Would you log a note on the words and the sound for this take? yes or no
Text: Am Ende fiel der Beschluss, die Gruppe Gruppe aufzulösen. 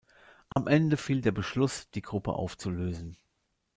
yes